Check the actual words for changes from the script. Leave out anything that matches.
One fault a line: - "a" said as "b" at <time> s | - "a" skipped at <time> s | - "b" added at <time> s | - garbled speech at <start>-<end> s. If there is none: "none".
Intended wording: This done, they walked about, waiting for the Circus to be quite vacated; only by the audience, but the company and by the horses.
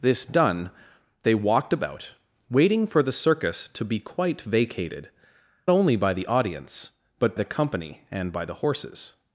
none